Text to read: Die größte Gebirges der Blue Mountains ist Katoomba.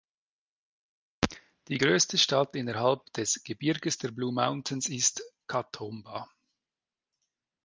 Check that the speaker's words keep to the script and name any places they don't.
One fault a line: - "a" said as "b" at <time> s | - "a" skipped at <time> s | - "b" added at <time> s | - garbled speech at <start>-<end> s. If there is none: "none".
- "Stadt innerhalb des" added at 2.2 s